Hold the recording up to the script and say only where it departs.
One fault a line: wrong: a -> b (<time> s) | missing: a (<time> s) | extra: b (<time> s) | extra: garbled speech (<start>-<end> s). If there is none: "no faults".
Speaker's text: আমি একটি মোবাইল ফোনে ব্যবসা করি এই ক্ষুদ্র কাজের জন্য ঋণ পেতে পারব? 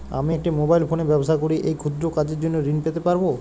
no faults